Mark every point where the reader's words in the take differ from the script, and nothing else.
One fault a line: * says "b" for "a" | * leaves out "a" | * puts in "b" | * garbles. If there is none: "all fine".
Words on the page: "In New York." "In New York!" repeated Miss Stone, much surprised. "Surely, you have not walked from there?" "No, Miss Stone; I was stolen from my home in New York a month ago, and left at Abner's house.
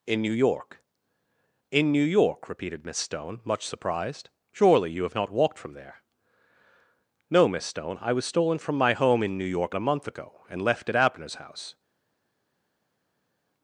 all fine